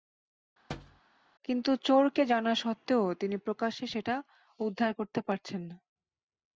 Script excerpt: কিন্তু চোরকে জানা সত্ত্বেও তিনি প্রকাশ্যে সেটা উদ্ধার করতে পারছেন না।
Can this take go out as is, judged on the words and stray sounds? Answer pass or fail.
fail